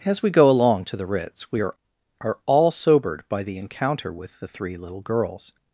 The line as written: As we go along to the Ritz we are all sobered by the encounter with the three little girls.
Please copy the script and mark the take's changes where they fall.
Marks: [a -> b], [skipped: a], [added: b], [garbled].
As we go along to the Ritz we are [added: are] all sobered by the encounter with the three little girls.